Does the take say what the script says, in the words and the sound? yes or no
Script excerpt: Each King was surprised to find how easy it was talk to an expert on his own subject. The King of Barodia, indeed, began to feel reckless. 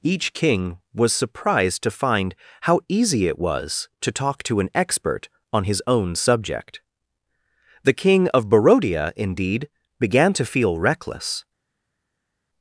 no